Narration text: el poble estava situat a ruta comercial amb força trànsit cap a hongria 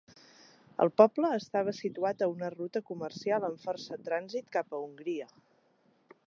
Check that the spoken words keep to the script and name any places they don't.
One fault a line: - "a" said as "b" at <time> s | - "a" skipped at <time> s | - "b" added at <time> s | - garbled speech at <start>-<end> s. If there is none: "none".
- "una" added at 2.3 s